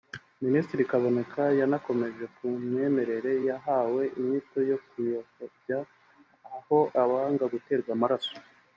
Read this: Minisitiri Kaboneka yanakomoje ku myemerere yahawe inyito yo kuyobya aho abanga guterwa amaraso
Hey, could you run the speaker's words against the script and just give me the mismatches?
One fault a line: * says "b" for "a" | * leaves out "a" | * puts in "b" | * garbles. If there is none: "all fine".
all fine